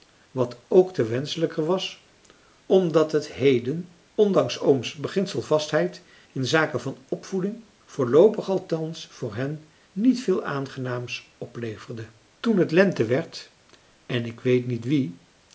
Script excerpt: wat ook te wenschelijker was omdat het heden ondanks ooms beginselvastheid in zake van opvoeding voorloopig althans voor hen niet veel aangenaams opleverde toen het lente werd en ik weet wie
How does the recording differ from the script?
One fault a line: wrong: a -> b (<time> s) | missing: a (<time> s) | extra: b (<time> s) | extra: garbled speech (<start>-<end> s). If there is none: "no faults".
extra: niet (14.7 s)